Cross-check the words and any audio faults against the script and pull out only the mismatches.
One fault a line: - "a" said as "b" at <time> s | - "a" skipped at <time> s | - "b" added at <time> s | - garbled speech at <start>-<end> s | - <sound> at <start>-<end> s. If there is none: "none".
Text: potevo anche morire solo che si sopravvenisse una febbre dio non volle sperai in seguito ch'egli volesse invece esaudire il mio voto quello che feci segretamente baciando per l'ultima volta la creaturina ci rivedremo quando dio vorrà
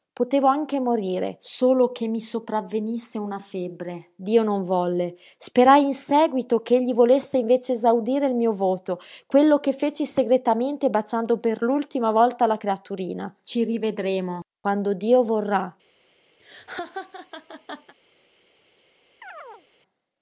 - "si" said as "mi" at 2.1 s
- laugh at 16.4-17.9 s
- chirp at 19.2-19.7 s